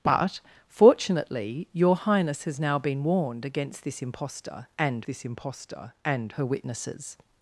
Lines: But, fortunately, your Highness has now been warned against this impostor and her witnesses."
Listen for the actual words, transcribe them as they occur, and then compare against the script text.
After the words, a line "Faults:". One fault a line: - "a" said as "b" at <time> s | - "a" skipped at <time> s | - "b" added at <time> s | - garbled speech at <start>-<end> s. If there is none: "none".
But, fortunately, your Highness has now been warned against this impostor and this impostor and her witnesses."
Faults:
- "this impostor and" added at 5.1 s